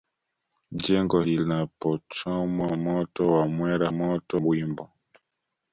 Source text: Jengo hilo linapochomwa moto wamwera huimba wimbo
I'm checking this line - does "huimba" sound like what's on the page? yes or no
no